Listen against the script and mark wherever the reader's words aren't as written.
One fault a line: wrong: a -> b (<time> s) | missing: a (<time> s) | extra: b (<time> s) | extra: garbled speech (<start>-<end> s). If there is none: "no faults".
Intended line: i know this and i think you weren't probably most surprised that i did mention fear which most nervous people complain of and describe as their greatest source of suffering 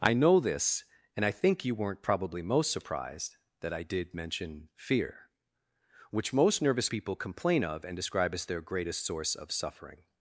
no faults